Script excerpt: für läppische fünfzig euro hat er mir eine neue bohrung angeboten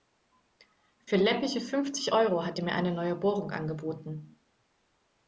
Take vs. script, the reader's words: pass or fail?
pass